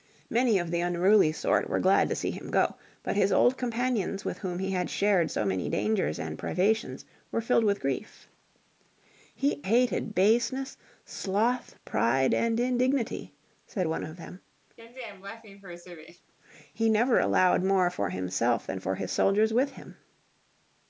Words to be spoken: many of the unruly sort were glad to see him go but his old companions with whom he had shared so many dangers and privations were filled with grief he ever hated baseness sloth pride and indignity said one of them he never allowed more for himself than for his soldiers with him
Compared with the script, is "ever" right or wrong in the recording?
wrong